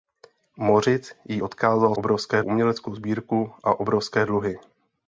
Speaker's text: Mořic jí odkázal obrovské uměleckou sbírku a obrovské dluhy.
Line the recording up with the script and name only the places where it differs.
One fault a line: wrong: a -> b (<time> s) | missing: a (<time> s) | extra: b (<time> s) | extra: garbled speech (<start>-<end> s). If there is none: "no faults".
no faults